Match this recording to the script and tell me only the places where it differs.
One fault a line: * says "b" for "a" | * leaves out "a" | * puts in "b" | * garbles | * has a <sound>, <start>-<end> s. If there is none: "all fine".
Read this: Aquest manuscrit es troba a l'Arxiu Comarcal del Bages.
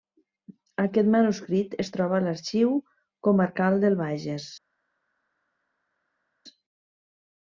all fine